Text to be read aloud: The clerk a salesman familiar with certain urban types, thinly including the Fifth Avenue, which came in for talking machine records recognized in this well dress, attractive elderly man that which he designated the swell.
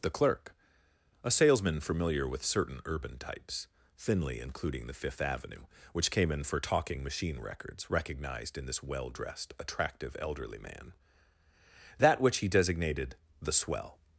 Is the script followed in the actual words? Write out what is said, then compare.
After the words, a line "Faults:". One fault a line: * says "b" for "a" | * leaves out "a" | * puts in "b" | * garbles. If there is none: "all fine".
The clerk a salesman familiar with certain urban types, thinly including the Fifth Avenue, which came in for talking machine records recognized in this well dressed, attractive elderly man that which he designated the swell.
Faults:
* says "dressed" for "dress"